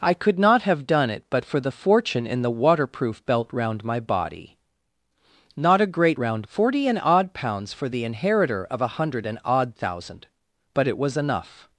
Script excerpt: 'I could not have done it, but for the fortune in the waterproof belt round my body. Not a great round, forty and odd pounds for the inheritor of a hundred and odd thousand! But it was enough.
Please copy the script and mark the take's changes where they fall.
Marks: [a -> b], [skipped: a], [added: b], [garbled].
'I could not have done it, but for the fortune in the waterproof belt round my body. Not a great round, forty and odd pounds for the inheritor of a hundred and odd thousand! But it was enough.